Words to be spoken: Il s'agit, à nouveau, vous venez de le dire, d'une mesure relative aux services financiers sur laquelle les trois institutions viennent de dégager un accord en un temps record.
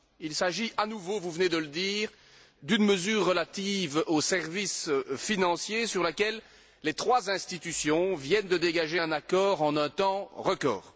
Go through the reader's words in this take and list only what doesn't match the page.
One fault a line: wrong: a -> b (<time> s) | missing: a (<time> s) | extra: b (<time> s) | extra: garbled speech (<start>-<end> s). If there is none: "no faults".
no faults